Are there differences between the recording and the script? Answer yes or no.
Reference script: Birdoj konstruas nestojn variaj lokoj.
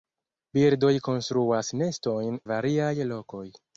no